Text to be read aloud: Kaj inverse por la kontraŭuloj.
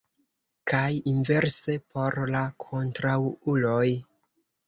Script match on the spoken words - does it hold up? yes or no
yes